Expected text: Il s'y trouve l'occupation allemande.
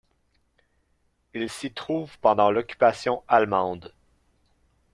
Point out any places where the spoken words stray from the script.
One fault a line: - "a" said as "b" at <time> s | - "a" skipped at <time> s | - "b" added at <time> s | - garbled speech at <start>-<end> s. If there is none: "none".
- "pendant" added at 2.2 s